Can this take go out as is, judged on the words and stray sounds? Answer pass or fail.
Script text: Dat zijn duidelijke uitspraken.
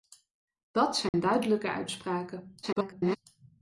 fail